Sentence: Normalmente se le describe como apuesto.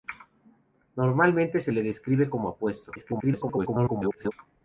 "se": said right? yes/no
yes